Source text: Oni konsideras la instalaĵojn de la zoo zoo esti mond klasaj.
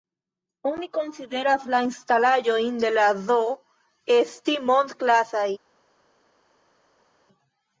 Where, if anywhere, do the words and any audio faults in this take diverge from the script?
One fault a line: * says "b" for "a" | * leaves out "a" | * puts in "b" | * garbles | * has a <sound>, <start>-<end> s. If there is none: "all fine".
* leaves out "zoo"